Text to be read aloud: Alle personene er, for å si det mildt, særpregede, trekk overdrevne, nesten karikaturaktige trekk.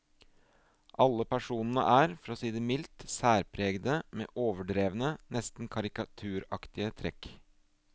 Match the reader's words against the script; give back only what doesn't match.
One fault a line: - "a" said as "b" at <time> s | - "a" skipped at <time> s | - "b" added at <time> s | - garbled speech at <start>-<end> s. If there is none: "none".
- "trekk" said as "med" at 4.2 s